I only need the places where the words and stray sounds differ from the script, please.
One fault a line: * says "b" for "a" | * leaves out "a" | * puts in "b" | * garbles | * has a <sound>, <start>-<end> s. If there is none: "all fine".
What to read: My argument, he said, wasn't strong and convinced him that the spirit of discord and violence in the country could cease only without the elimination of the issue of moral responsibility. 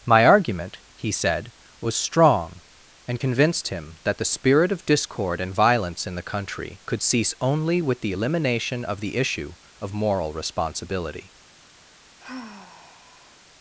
* says "was" for "wasn't"
* says "with" for "without"
* has a sigh, 12.2-13.4 s